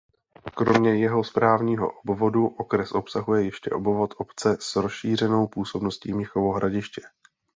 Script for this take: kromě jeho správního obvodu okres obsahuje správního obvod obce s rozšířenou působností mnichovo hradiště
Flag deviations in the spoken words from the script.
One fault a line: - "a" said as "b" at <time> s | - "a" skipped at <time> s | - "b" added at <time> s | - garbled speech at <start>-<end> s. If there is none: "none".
- "správního" said as "ještě" at 3.5 s